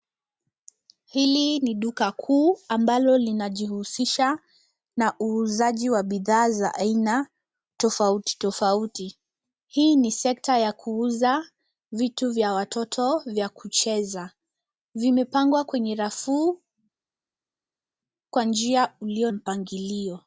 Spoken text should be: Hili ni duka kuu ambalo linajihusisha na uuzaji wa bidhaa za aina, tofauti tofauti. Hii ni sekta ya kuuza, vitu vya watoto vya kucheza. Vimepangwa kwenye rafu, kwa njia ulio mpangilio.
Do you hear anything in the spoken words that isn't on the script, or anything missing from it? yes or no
no